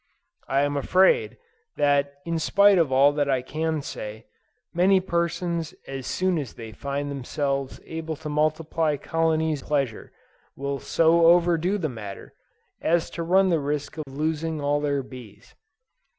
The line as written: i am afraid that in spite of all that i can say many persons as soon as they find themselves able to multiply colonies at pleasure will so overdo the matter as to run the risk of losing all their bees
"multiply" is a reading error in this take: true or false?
false